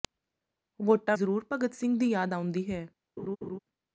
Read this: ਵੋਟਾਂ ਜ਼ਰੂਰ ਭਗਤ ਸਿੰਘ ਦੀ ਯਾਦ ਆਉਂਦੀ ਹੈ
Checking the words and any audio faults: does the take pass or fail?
fail